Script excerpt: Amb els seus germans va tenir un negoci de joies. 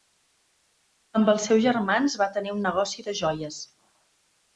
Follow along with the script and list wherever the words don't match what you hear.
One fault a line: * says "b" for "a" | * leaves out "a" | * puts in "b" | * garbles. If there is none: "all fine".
all fine